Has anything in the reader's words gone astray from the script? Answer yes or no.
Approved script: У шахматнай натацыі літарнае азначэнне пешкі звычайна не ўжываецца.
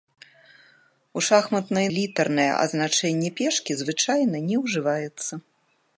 yes